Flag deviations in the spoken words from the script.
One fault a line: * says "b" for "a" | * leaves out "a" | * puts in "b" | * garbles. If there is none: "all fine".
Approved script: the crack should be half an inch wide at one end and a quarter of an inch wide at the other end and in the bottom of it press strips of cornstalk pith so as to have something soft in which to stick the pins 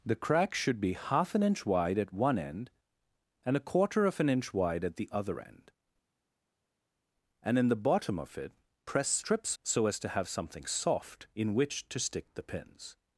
* leaves out "of cornstalk pith"